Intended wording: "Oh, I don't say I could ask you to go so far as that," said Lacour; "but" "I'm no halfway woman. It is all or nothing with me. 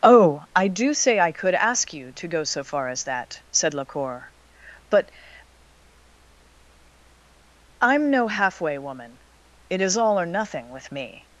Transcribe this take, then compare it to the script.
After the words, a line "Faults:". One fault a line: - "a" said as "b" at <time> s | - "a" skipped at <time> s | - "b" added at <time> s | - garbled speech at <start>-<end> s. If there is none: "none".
"Oh, I do say I could ask you to go so far as that," said Lacour; "but" "I'm no halfway woman. It is all or nothing with me.
Faults:
- "don't" said as "do" at 0.7 s